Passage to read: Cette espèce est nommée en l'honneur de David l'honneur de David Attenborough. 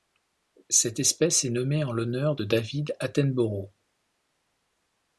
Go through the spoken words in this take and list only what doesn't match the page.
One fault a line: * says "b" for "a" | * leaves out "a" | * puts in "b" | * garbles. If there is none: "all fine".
* leaves out "l'honneur de David"